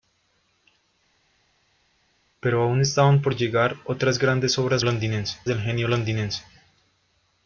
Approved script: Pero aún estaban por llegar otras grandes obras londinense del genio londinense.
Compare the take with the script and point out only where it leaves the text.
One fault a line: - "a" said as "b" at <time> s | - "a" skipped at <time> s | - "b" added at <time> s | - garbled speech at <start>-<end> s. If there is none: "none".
none